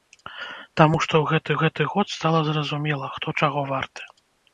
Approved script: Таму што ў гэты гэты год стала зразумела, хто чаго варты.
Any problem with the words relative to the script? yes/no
no